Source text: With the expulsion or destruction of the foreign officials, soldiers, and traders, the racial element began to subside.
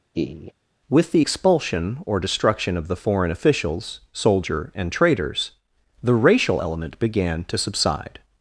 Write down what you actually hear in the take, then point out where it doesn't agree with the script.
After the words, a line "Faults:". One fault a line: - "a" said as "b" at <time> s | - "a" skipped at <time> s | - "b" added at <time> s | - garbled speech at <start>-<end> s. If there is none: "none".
With the expulsion or destruction of the foreign officials, soldier, and traders, the racial element began to subside.
Faults:
- "soldiers" said as "soldier" at 4.1 s